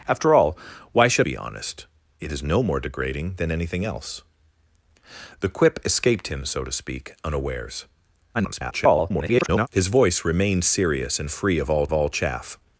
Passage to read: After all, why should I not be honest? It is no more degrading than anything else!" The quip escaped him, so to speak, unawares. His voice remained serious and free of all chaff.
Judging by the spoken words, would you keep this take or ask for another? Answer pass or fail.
fail